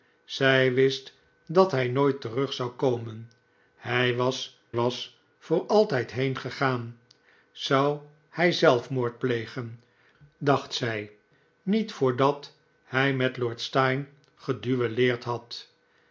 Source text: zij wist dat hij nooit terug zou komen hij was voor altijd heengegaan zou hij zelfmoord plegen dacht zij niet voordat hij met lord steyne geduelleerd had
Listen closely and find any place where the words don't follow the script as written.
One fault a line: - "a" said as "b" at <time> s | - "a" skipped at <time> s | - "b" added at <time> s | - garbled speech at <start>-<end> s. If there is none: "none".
- "was" added at 4.7 s